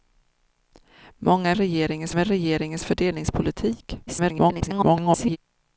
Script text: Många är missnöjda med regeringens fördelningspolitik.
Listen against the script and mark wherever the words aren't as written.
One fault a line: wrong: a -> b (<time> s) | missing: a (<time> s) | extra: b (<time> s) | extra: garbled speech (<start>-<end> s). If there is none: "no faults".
wrong: missnöjda -> regeringens (1.6 s)
extra: garbled speech (4.1-5.4 s)